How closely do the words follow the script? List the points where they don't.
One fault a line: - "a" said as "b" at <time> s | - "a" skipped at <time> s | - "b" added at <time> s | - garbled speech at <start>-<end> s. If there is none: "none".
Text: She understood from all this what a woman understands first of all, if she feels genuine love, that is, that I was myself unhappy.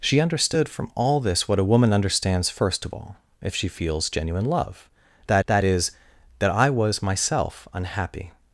- "that" added at 5.5 s